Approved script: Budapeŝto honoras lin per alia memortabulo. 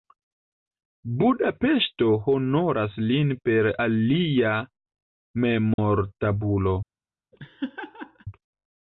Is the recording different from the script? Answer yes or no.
no